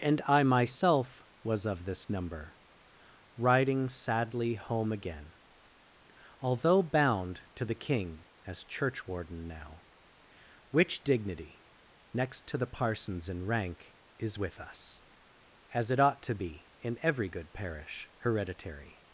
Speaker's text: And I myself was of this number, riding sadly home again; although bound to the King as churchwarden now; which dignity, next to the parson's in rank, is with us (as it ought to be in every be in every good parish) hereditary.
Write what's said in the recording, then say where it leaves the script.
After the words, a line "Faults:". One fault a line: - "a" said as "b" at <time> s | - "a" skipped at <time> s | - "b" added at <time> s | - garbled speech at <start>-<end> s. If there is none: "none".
And I myself was of this number, riding sadly home again; although bound to the King as churchwarden now; which dignity, next to the parson's in rank, is with us (as it ought to be in every good parish) hereditary.
Faults:
- "be in every" skipped at 17.3 s